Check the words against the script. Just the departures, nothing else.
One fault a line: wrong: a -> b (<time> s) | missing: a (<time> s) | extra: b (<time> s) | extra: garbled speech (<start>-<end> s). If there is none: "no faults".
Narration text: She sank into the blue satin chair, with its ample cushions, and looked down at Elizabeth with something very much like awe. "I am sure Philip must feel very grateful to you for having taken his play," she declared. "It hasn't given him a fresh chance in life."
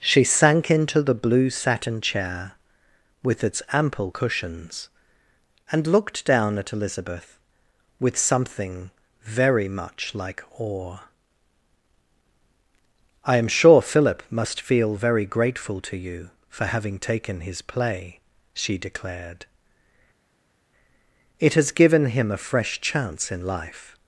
wrong: hasn't -> has (21.5 s)